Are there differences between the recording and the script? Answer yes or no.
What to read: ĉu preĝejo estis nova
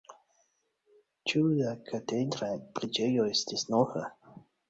yes